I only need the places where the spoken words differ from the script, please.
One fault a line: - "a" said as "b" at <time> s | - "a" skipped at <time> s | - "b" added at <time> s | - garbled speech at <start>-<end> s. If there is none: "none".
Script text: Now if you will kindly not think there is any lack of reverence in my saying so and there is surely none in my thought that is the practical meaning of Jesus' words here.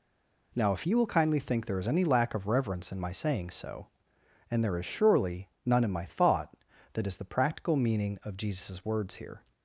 - "not" skipped at 1.4 s